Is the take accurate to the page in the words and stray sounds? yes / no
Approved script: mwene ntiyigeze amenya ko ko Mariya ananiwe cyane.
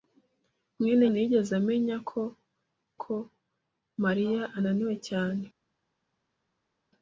yes